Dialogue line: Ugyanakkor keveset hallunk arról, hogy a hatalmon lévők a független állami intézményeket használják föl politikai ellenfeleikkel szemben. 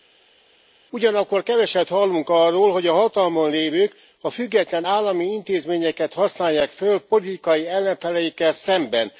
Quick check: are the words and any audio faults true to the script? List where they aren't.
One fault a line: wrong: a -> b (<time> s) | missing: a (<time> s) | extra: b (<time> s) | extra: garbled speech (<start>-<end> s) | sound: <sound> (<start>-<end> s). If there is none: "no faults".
no faults